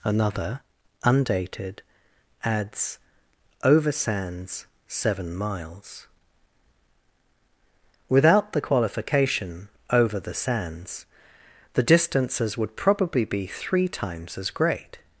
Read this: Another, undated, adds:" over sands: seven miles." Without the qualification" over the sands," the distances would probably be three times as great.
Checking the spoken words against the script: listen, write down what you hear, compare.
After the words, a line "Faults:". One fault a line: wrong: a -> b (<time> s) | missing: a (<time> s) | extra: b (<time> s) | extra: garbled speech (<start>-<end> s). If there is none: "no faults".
Another, undated, adds:" over sands: seven miles." Without the qualification" over the sands," the distances would probably be three times as great.
Faults:
no faults